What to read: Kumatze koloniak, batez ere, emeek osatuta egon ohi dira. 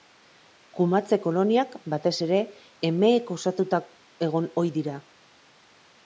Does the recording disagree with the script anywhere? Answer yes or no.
no